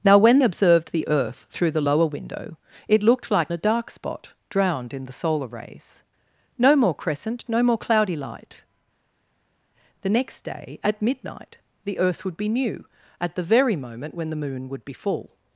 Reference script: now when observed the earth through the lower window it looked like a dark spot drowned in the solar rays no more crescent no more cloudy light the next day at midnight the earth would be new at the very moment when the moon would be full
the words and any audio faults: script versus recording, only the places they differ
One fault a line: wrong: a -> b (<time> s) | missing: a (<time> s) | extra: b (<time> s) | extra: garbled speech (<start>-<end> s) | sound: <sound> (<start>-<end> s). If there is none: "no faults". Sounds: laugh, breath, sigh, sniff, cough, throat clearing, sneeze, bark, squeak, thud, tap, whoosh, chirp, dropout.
no faults